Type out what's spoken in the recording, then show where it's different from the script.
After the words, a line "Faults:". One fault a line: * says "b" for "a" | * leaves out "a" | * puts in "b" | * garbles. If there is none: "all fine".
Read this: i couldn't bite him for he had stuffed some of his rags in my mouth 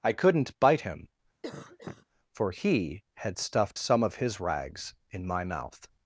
i couldn't bite him for he had stuffed some of his rags in my mouth
Faults:
all fine